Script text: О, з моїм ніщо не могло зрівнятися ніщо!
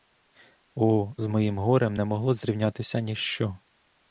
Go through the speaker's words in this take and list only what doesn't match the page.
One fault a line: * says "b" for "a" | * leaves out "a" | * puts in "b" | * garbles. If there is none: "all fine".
* says "горем" for "ніщо"